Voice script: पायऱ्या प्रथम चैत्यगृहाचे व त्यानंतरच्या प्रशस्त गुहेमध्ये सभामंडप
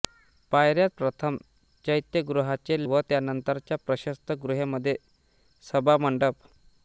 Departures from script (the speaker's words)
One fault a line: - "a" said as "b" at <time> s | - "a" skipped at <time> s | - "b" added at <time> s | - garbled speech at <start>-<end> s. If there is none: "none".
none